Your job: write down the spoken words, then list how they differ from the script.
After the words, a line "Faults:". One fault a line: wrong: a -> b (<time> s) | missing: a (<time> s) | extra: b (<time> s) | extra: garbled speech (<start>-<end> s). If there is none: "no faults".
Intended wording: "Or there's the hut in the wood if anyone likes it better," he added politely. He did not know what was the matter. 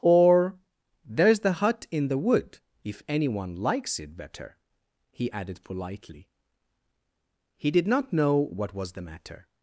"Or there's the hut in the wood if anyone likes it better," he added politely. He did not know what was the matter.
Faults:
no faults